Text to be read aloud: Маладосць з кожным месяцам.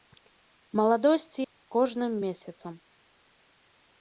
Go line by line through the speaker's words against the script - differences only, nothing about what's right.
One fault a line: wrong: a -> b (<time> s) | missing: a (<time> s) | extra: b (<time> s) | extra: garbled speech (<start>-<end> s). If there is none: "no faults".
no faults